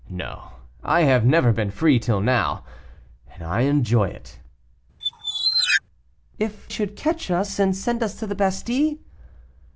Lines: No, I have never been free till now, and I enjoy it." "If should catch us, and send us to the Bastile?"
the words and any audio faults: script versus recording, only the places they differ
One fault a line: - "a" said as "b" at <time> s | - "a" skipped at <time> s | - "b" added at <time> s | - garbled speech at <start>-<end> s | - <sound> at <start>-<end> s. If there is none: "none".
- squeak at 5.0-5.8 s